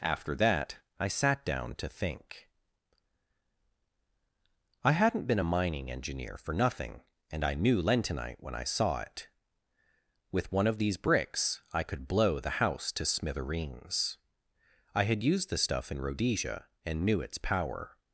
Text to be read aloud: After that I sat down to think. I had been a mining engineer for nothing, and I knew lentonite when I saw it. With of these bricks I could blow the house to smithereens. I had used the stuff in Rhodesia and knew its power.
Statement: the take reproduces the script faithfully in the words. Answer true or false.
false